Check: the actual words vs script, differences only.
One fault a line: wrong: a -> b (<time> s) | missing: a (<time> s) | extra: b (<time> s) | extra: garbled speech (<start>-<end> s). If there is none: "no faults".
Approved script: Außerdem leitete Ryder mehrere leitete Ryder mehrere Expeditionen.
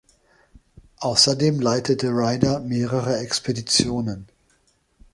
missing: leitete Ryder mehrere (3.2 s)